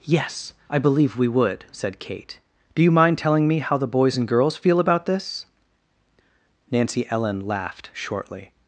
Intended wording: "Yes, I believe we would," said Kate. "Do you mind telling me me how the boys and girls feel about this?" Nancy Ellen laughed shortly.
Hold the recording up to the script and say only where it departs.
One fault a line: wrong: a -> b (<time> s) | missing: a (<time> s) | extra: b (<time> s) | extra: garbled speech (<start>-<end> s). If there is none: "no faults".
missing: me (3.6 s)